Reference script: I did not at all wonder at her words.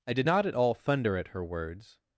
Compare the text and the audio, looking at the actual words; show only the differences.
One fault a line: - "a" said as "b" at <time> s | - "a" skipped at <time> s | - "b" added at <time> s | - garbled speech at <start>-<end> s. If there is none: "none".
- "wonder" said as "thunder" at 0.7 s